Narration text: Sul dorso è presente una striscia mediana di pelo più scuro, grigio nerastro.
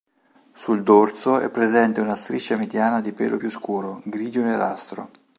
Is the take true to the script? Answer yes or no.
yes